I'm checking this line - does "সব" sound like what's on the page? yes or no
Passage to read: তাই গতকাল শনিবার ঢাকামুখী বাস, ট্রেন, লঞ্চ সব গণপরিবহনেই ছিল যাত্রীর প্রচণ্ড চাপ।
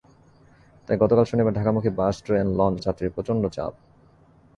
no